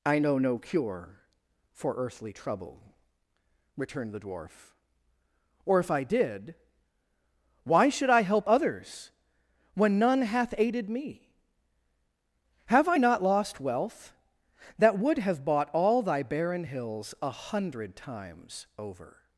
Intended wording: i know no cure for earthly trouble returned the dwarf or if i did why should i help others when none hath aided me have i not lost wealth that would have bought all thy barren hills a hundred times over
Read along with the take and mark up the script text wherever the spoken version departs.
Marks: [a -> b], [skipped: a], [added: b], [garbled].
i know no cure for earthly trouble returned the dwarf or if i did why should i help others when none hath aided me have i not lost wealth that would have bought all thy barren hills a hundred times over